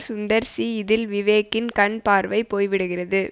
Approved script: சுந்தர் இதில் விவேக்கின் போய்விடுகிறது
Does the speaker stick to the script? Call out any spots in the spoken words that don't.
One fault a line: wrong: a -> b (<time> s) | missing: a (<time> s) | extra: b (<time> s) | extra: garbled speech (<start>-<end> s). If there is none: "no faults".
extra: சி (0.5 s)
extra: கண் பார்வை (1.7 s)